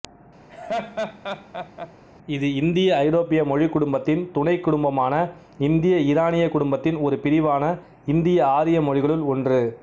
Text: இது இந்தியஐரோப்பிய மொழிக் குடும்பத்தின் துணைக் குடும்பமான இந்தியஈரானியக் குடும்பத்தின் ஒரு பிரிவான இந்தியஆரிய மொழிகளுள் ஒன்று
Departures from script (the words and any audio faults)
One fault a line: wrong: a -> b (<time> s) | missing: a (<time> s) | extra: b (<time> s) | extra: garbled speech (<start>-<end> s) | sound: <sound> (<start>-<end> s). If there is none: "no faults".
sound: laugh (0.5-1.9 s)